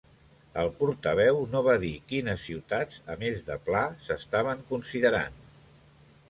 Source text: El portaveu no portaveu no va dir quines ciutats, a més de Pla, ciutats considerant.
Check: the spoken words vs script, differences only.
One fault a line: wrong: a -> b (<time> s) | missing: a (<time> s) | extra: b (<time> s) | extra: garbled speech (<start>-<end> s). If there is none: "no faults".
missing: portaveu no (1.6 s)
wrong: ciutats -> s'estaven (4.1 s)